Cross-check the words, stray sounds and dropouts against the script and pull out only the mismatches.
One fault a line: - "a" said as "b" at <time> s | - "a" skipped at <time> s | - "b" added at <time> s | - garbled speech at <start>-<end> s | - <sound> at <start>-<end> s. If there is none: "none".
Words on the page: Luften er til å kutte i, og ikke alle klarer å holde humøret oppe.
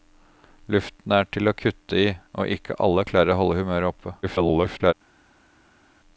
- garbled speech at 4.2-4.9 s